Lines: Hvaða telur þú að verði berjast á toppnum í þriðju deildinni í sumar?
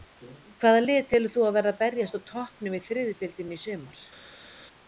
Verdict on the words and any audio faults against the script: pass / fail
fail